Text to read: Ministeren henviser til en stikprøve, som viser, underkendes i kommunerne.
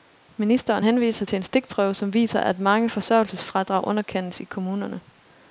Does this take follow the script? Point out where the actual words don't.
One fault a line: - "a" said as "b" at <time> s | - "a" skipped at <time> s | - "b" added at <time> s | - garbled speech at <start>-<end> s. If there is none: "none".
- "at mange forsørgelsesfradrag" added at 2.4 s